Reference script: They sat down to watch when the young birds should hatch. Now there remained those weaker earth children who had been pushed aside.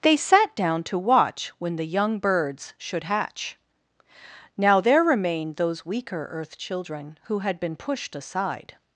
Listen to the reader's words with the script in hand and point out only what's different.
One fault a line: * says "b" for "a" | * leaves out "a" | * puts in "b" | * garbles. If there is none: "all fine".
all fine